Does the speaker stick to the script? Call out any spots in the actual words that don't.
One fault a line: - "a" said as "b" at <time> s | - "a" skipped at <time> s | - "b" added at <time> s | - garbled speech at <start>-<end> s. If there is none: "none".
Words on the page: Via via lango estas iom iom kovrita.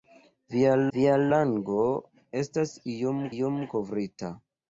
none